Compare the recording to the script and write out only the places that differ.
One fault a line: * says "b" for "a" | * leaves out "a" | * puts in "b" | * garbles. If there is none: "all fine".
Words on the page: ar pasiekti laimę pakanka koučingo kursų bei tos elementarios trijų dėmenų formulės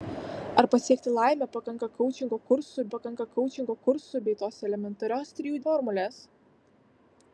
* puts in "pakanka koučingo kursų"
* leaves out "dėmenų"